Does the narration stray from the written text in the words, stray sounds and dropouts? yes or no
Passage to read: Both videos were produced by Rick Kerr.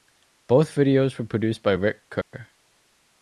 yes